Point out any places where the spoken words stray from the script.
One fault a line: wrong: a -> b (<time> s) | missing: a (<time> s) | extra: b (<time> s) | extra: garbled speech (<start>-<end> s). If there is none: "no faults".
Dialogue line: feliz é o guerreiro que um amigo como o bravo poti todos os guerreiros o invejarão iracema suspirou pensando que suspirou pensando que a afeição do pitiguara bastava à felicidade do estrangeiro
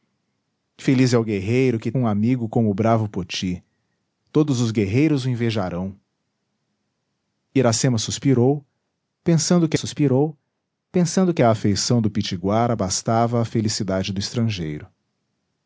no faults